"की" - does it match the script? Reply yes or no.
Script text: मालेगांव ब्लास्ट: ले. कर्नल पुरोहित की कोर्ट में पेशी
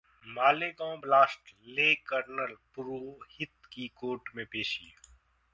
yes